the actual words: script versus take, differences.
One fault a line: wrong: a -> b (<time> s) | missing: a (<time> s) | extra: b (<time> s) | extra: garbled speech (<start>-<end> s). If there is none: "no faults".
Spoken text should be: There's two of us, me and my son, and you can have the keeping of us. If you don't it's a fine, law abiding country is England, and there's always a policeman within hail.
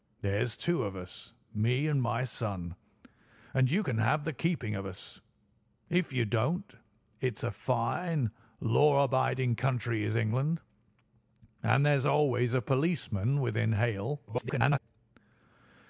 extra: garbled speech (14.3-14.8 s)